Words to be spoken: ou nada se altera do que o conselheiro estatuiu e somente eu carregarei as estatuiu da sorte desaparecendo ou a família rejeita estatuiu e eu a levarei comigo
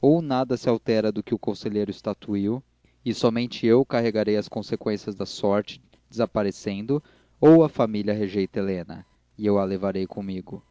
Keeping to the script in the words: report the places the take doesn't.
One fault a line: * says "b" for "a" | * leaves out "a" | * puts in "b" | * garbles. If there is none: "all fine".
* says "conseqüências" for "estatuiu"
* says "helena" for "estatuiu"